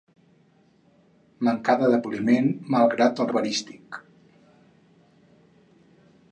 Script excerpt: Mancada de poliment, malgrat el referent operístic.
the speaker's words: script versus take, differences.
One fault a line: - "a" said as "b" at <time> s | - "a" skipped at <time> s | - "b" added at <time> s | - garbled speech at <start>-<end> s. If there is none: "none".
- "referent" skipped at 3.3 s